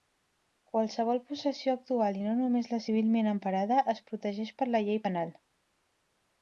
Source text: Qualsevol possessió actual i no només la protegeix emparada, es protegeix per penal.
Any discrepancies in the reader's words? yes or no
yes